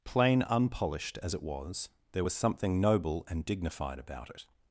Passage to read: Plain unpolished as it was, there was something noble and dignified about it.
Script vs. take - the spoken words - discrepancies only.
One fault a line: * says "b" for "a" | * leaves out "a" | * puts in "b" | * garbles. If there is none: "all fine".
all fine